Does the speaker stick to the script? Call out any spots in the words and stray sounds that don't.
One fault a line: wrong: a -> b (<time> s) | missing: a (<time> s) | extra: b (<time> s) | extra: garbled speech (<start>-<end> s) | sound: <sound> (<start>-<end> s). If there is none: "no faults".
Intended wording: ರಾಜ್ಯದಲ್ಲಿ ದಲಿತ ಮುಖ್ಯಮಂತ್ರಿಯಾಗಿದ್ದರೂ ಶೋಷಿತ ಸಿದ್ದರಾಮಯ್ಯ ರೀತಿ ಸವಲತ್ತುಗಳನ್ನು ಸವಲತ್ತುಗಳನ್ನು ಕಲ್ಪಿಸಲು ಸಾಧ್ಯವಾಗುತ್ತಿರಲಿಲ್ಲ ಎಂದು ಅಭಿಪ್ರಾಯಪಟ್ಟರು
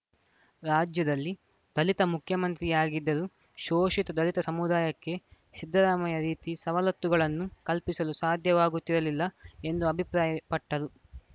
extra: ದಲಿತ ಸಮುದಾಯಕ್ಕೆ (4.2 s)
missing: ಸವಲತ್ತುಗಳನ್ನು (7.5 s)